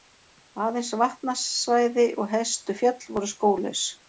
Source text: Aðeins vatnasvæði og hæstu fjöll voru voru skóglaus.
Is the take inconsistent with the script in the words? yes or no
yes